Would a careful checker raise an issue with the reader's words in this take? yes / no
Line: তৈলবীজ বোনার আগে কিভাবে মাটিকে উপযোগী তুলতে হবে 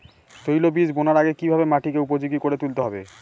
yes